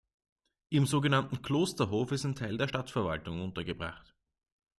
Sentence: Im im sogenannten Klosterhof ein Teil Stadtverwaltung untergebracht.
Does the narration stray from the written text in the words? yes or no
yes